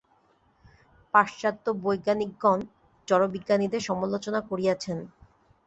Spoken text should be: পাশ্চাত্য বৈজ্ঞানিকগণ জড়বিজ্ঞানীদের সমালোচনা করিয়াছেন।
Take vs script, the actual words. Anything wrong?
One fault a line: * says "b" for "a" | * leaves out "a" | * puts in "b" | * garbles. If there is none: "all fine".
all fine